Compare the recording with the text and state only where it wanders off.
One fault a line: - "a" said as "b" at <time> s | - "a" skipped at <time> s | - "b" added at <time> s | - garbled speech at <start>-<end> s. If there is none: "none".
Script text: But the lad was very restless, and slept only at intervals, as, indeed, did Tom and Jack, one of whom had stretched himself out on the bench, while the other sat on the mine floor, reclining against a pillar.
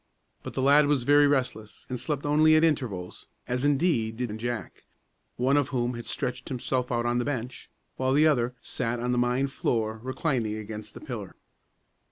- "Tom" skipped at 4.3 s